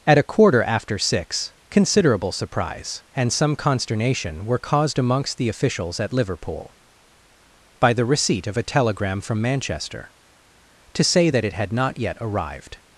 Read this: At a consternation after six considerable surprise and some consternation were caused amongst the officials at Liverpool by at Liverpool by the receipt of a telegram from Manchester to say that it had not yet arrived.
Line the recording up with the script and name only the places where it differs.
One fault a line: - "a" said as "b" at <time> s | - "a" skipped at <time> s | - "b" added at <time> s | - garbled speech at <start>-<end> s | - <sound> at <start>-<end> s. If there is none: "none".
- "consternation" said as "quarter" at 0.2 s
- "at Liverpool by" skipped at 7.9 s